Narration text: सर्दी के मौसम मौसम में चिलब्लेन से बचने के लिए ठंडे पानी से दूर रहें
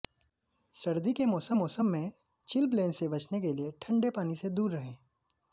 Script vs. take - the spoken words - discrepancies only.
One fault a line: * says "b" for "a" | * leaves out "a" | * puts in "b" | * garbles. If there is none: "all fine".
all fine